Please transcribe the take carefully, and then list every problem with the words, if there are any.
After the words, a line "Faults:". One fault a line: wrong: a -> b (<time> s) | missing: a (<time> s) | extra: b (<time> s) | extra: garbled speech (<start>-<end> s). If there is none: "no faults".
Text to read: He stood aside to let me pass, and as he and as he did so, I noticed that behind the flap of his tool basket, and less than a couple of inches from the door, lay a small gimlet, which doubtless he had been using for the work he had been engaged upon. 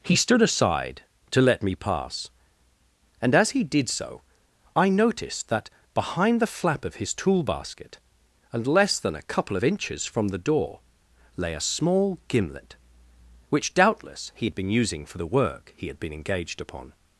He stood aside to let me pass, and as he did so, I noticed that behind the flap of his tool basket, and less than a couple of inches from the door, lay a small gimlet, which doubtless he had been using for the work he had been engaged upon.
Faults:
missing: and as he (3.6 s)